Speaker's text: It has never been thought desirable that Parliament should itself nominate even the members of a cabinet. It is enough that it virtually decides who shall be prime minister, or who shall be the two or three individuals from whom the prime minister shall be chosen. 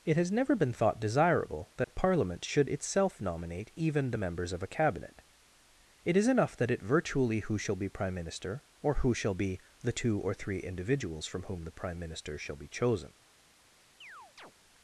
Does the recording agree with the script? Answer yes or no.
no